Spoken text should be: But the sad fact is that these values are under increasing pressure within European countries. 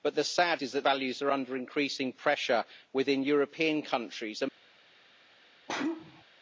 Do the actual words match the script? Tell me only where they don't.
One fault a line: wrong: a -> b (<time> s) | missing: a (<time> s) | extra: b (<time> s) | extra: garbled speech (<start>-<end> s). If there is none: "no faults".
missing: fact (0.6 s)
missing: these (0.9 s)